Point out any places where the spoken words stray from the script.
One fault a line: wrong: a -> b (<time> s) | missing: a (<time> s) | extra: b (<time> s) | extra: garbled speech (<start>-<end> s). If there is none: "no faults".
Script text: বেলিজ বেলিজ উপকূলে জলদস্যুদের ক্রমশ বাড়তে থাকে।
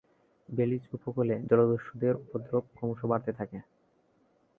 missing: বেলিজ (0.8 s)
extra: উপদ্রব (2.2 s)